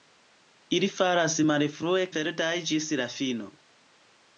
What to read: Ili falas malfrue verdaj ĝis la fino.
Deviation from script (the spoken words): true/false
false